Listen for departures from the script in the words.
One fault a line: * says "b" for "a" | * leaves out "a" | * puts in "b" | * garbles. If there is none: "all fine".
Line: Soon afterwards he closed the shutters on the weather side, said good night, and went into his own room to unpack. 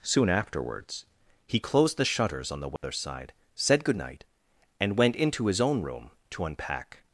all fine